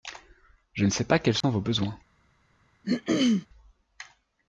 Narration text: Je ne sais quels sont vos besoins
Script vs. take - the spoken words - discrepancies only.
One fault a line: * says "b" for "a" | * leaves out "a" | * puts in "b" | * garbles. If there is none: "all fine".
* puts in "pas"